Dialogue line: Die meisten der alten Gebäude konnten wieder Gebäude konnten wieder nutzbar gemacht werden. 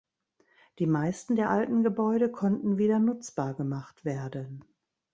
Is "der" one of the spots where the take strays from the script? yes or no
no